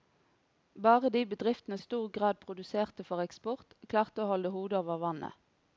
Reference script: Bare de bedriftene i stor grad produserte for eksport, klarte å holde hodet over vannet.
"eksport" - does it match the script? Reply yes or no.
yes